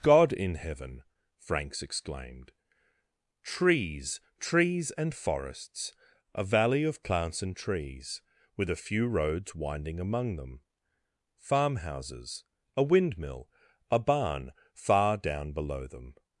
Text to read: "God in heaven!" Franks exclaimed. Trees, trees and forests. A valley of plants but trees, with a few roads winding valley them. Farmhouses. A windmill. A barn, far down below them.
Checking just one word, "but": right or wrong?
wrong